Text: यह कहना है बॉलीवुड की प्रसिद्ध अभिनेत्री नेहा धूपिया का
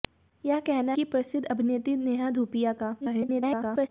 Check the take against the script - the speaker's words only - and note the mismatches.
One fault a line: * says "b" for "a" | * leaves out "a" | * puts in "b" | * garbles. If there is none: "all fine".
* leaves out "है बॉलीवुड"
* garbles